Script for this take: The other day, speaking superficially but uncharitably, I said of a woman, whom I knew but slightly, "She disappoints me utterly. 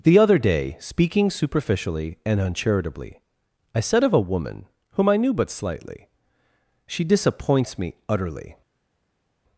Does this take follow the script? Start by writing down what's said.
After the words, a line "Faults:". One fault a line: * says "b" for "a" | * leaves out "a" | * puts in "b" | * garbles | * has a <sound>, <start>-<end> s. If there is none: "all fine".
The other day, speaking superficially and uncharitably, I said of a woman, whom I knew but slightly, "She disappoints me utterly.
Faults:
* says "and" for "but"